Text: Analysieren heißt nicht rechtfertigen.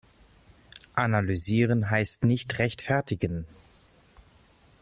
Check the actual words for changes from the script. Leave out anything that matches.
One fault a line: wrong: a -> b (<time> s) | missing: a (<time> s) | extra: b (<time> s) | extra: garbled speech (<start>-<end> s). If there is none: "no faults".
no faults